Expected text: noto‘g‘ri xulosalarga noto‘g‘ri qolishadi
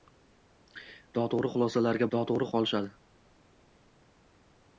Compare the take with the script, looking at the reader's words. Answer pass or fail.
pass